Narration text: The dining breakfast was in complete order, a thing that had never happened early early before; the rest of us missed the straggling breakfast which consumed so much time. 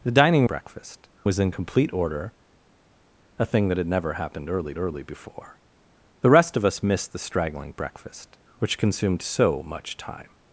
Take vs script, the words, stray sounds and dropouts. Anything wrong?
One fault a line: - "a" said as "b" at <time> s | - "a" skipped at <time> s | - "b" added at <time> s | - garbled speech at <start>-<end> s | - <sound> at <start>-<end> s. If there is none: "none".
none